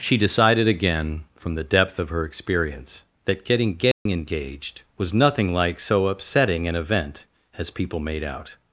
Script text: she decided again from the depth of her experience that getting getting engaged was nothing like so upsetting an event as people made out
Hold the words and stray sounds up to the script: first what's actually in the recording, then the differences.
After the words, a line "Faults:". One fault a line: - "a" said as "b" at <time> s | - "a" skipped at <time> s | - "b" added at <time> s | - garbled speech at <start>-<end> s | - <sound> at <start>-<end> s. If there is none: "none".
she decided again from the depth of her experience that getting getting engaged was nothing like so upsetting an event as people made out
Faults:
- dropout at 3.9-4.1 s